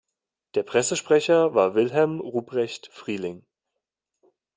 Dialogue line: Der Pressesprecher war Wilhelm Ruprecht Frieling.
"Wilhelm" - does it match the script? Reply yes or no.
yes